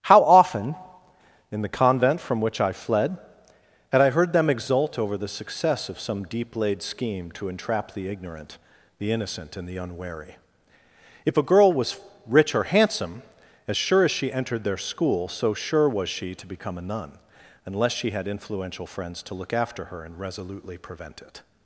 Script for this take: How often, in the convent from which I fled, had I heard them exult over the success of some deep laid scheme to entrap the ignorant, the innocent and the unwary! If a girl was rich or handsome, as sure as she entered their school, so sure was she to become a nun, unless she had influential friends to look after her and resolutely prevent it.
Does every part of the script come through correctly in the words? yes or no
yes